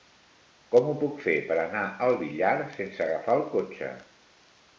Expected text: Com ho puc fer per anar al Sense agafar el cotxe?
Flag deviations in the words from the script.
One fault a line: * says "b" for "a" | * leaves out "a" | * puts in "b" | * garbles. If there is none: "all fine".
* puts in "Villar"